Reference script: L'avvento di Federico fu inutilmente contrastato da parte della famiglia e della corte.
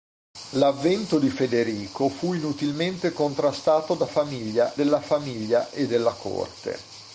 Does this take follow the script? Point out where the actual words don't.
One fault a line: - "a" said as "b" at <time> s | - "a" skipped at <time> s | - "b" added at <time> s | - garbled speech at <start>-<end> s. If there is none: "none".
- "parte" said as "famiglia" at 4.1 s